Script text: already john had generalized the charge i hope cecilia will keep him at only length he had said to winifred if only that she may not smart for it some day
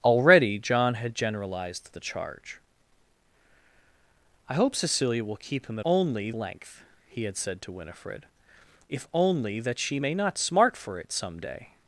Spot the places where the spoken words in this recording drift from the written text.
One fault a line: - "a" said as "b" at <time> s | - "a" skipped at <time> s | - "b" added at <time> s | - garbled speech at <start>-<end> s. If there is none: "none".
none